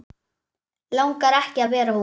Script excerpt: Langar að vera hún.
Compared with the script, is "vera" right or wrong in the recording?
right